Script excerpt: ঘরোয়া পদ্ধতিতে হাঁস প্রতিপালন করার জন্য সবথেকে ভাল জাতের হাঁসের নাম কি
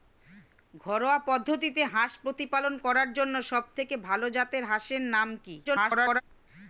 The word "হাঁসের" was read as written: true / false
true